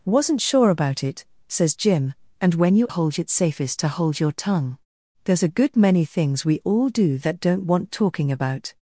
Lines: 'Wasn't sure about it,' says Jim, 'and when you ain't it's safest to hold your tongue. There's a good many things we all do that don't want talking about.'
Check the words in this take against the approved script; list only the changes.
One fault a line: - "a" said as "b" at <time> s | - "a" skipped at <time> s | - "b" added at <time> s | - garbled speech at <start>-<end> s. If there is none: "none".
- "ain't" said as "hold" at 2.9 s